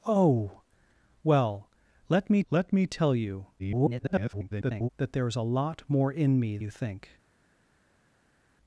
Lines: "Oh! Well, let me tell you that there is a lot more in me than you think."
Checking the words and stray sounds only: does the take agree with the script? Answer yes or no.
no